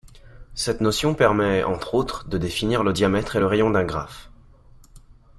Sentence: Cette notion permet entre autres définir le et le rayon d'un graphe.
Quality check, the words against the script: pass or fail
fail